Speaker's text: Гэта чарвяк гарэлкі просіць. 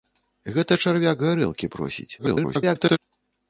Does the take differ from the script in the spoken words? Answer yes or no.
yes